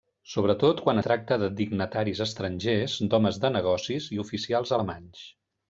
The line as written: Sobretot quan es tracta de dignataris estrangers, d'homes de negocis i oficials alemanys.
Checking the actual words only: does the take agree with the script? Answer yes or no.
no